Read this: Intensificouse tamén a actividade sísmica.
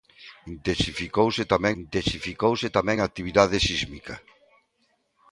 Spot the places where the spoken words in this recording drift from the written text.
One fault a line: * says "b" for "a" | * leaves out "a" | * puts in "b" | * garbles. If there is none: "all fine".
* puts in "intensificouse tamén"